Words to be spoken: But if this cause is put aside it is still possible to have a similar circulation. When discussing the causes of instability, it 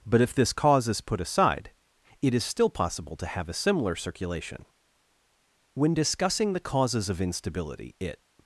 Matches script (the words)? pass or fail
pass